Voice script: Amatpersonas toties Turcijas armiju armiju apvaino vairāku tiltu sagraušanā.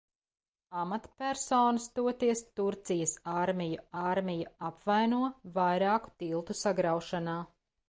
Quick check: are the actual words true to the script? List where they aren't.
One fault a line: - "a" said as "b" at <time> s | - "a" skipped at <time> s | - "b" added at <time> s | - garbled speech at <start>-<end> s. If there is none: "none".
none